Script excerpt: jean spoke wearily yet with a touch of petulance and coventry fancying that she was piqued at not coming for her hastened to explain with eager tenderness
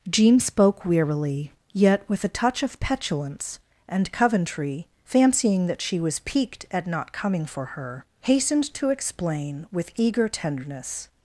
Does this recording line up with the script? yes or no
yes